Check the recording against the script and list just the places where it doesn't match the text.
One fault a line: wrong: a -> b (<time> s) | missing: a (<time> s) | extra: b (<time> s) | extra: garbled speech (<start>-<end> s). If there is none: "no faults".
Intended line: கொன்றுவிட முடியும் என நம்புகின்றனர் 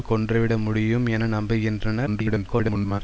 extra: garbled speech (2.1-3.0 s)